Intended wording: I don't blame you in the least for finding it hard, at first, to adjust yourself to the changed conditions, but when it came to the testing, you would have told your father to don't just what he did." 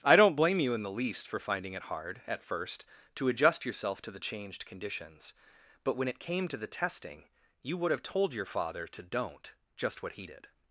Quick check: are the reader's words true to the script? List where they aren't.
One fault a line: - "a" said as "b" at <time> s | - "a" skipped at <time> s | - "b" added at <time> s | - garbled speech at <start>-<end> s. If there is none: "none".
none